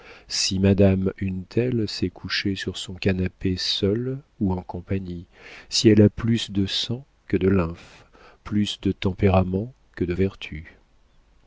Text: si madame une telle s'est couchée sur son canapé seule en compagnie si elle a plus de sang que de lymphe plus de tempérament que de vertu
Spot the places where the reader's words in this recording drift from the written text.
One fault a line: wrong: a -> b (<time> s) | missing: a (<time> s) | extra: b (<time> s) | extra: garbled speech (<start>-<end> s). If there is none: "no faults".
extra: ou (4.4 s)